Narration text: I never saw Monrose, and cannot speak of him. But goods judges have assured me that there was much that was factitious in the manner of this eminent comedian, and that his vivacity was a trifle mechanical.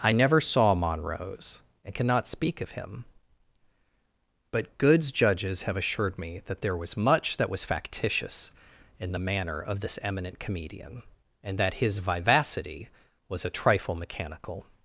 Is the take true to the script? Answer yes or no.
yes